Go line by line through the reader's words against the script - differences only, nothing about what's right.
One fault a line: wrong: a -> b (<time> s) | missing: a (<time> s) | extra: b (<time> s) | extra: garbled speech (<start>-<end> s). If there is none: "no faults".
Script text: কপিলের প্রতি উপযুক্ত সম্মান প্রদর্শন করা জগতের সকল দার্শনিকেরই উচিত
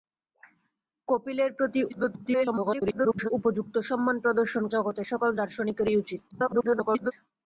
extra: garbled speech (1.9-3.3 s)
missing: করা (4.6 s)
extra: garbled speech (6.3-7.1 s)